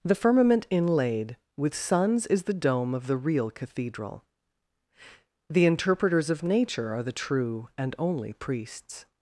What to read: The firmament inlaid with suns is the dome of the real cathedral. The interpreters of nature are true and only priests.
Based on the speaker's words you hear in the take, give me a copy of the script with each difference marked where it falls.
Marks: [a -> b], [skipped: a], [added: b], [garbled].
The firmament inlaid with suns is the dome of the real cathedral. The interpreters of nature are [added: the] true and only priests.